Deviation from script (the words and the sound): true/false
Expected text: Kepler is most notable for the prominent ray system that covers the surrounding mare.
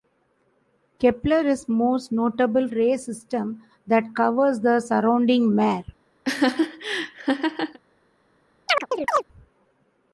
true